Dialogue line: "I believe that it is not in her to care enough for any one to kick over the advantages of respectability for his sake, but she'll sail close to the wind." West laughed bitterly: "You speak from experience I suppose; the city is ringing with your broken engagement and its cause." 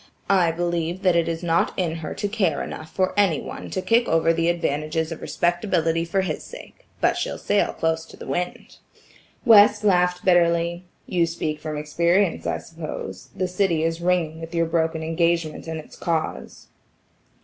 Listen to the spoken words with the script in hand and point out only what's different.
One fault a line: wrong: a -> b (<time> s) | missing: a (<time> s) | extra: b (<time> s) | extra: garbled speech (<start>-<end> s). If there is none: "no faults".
no faults